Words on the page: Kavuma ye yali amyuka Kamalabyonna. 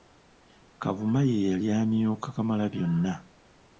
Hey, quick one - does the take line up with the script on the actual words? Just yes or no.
yes